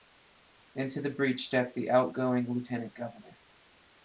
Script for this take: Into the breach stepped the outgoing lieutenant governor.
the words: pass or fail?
pass